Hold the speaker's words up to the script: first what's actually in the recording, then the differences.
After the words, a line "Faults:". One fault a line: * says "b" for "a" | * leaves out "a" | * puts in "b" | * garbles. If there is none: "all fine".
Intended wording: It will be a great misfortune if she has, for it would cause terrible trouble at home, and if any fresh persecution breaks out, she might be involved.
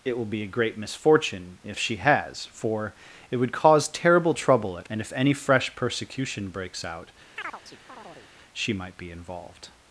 It will be a great misfortune if she has, for it would cause terrible trouble at and if any fresh persecution breaks out, she might be involved.
Faults:
* leaves out "home"